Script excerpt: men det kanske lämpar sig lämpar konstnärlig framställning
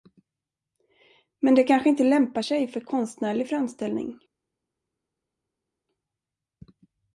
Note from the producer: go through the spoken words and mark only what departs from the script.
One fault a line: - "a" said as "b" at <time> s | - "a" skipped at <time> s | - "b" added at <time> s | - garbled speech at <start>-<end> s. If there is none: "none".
- "inte" added at 1.9 s
- "lämpar" said as "för" at 2.7 s